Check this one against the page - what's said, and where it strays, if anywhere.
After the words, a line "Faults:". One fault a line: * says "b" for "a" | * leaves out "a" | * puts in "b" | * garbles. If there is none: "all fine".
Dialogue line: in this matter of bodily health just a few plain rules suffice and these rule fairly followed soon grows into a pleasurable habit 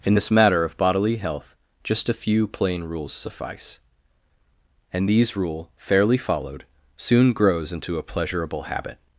in this matter of bodily health just a few plain rules suffice and these rule fairly followed soon grows into a pleasurable habit
Faults:
all fine